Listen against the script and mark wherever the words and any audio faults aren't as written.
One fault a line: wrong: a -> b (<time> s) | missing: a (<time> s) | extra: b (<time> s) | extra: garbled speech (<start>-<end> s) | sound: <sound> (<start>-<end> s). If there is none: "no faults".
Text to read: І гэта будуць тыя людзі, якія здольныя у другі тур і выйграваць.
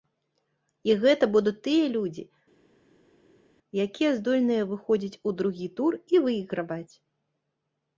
extra: выходзіць (4.7 s)